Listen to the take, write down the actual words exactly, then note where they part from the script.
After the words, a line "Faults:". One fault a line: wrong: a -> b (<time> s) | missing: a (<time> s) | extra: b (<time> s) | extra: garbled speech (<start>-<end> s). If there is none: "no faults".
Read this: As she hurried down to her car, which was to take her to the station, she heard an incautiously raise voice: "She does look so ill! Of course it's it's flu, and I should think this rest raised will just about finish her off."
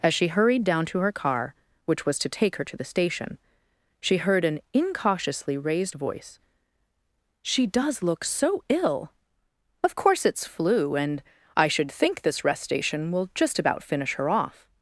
As she hurried down to her car, which was to take her to the station, she heard an incautiously raised voice: "She does look so ill! Of course it's flu, and I should think this rest station will just about finish her off."
Faults:
wrong: raise -> raised (5.6 s)
missing: it's (10.5 s)
wrong: raised -> station (12.6 s)